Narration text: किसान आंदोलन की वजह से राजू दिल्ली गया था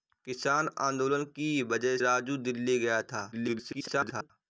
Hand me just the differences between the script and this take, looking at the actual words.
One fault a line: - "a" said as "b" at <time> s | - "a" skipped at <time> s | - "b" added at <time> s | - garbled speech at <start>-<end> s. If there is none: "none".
- "से" skipped at 2.0 s
- garbled speech at 3.3-4.3 s